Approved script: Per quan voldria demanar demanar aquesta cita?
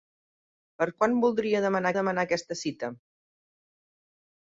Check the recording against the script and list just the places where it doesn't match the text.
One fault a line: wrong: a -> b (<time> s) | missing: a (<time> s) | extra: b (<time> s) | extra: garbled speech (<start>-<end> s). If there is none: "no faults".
no faults